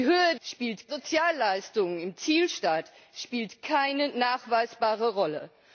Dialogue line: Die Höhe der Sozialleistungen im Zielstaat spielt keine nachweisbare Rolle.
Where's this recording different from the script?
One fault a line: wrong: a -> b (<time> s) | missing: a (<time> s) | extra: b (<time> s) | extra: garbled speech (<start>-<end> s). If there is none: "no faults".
wrong: der -> spielt (0.4 s)